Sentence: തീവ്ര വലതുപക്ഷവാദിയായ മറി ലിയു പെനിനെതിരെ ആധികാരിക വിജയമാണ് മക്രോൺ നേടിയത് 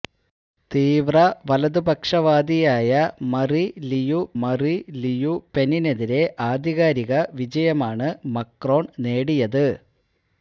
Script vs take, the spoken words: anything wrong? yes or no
yes